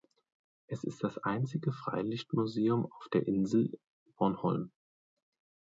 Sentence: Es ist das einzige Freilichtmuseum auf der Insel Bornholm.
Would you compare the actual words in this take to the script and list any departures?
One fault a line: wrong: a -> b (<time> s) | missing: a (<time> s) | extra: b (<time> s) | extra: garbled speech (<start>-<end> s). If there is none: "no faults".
no faults